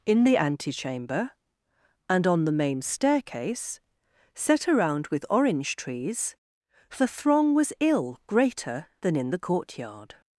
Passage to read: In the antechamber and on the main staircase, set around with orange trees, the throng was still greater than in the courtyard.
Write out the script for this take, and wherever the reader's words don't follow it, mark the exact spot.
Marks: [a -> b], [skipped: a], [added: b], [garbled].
In the antechamber and on the main staircase, set around with orange trees, the throng was [still -> ill] greater than in the courtyard.